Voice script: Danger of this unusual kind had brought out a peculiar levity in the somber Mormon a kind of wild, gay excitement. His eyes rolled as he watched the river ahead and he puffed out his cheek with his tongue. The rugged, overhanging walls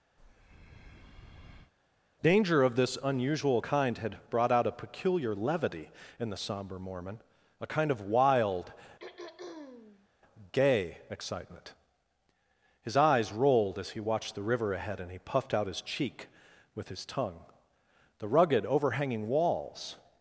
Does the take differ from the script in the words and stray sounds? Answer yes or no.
yes